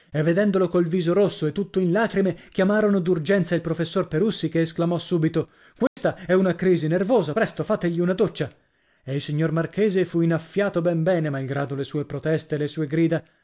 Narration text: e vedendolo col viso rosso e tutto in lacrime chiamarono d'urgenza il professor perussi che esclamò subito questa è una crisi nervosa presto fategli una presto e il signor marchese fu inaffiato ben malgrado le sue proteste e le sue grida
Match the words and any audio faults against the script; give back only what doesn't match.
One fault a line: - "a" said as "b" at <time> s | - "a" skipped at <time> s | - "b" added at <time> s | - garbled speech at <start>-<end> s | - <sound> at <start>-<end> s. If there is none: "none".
- dropout at 5.9-6.0 s
- "presto" said as "doccia" at 8.1 s
- "bene" added at 11.0 s